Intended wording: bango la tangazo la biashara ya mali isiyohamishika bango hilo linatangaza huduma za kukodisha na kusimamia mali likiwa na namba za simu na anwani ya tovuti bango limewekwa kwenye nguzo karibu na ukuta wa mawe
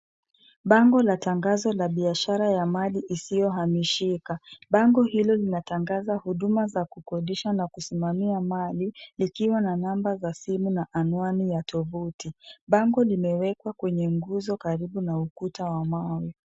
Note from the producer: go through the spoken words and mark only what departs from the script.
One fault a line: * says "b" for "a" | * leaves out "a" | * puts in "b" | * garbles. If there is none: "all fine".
all fine